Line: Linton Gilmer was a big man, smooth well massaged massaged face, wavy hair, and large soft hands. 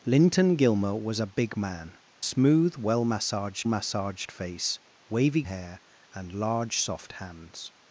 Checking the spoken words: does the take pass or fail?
pass